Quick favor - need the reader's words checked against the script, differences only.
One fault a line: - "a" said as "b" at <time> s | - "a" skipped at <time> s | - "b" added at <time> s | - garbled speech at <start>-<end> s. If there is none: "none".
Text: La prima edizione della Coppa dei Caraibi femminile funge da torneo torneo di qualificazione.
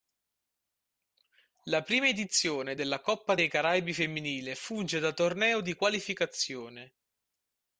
- "torneo" skipped at 5.6 s